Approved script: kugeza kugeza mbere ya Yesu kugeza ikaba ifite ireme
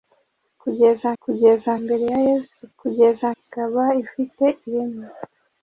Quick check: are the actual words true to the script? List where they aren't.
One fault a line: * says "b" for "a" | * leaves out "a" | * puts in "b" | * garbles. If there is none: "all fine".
all fine